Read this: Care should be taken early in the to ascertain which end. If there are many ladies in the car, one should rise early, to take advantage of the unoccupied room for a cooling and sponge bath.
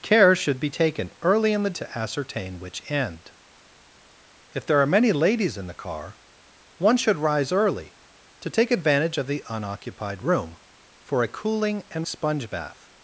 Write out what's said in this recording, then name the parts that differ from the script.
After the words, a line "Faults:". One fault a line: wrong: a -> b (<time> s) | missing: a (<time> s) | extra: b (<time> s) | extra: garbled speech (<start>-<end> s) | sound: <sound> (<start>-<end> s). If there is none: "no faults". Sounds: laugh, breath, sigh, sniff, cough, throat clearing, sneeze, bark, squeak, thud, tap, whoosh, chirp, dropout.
Care should be taken early in the to ascertain which end. If there are many ladies in the car, one should rise early, to take advantage of the unoccupied room for a cooling and sponge bath.
Faults:
no faults